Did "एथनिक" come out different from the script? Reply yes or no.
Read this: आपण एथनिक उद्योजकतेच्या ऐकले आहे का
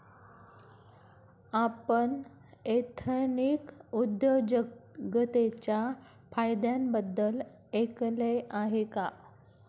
no